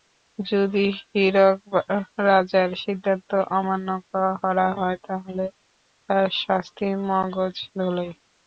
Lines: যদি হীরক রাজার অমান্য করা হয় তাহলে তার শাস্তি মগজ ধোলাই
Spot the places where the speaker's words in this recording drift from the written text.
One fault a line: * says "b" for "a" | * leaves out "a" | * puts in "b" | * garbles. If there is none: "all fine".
* puts in "সিদ্ধান্ত"